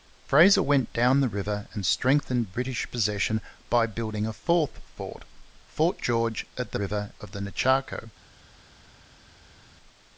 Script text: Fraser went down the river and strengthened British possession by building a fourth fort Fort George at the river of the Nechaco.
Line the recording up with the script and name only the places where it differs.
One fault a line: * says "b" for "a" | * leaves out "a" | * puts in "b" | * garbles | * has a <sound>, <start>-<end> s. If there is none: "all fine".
all fine